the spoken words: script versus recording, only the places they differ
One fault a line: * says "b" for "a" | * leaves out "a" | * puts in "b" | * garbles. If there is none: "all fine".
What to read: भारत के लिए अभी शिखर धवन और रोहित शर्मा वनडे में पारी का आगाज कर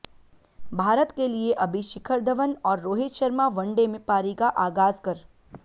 all fine